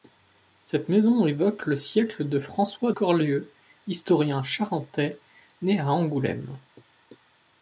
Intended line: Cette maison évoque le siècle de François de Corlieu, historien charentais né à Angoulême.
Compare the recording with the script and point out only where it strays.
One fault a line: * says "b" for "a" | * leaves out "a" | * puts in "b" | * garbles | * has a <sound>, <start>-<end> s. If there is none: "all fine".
* leaves out "de"